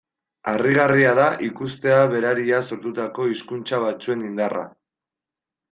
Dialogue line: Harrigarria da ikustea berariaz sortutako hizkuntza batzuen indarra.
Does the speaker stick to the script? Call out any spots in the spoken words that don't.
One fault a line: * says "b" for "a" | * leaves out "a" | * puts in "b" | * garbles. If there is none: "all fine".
all fine